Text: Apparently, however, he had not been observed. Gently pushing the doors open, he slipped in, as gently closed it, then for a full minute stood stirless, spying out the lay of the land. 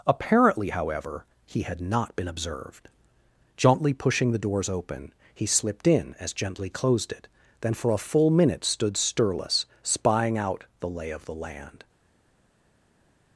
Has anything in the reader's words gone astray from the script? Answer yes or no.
no